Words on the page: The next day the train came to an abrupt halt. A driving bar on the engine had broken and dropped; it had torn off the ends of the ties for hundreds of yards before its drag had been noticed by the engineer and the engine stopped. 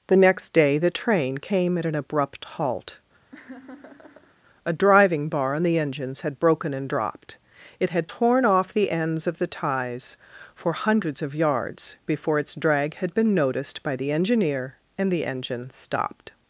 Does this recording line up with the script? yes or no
no